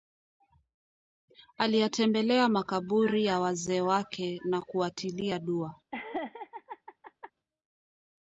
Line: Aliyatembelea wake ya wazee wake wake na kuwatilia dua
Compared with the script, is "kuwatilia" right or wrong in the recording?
right